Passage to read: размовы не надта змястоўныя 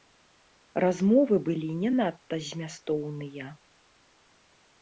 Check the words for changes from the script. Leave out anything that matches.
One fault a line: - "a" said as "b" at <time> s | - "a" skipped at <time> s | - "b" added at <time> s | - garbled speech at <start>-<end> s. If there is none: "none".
- "былі" added at 1.5 s